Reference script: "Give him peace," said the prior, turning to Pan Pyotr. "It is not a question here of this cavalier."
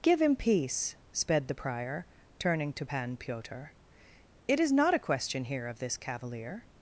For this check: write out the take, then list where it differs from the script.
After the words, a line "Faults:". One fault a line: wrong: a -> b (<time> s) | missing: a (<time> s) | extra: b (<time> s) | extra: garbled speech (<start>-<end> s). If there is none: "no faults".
"Give him peace," sped the prior, turning to Pan Pyotr. "It is not a question here of this cavalier."
Faults:
wrong: said -> sped (1.1 s)